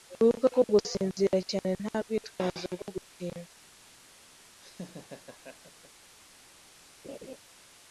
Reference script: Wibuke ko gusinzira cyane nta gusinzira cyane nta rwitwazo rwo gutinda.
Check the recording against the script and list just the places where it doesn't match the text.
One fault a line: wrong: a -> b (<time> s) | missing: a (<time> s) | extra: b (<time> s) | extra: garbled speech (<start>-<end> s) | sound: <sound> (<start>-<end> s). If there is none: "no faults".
missing: gusinzira cyane nta (2.0 s)
sound: laugh (4.6-5.9 s)
sound: laugh (7.0-7.4 s)